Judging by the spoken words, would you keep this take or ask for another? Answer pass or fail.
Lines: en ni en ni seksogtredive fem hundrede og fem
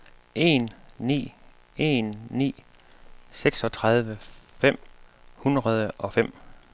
pass